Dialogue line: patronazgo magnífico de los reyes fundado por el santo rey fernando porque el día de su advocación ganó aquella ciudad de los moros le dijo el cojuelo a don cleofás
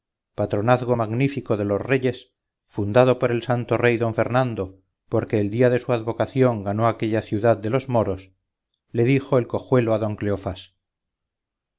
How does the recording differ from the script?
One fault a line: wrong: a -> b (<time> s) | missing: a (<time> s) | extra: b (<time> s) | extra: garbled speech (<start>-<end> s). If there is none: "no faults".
extra: don (4.0 s)